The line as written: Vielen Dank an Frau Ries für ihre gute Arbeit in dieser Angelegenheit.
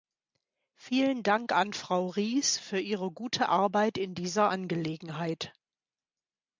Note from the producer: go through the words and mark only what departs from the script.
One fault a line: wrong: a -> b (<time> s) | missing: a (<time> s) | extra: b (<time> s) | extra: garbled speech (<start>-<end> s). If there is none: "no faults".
no faults